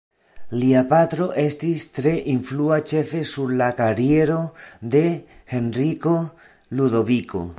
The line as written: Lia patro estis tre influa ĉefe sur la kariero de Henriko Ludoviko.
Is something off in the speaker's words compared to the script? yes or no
no